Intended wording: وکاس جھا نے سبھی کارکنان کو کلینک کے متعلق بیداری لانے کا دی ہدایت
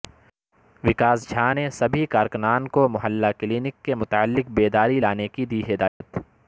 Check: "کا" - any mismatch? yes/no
yes